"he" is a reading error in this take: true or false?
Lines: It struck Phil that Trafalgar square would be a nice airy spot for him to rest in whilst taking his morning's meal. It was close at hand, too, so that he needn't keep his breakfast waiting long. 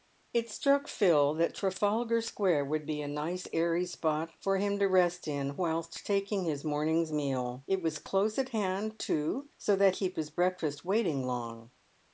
true